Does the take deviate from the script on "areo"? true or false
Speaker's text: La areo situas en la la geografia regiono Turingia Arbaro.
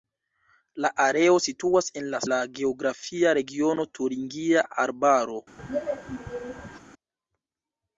false